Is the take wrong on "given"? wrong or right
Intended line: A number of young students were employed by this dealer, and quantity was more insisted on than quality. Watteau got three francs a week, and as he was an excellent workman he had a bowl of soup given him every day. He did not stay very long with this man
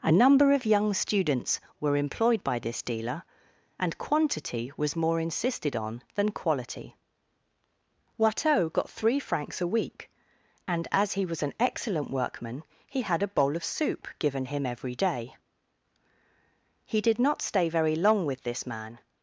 right